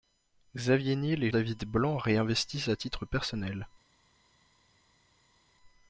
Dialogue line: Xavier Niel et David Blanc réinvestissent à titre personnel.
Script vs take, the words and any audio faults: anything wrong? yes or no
no